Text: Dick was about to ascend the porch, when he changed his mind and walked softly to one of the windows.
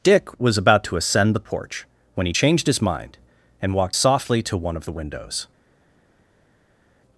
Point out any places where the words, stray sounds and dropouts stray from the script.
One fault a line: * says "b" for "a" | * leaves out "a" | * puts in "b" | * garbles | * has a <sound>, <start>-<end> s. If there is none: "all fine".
all fine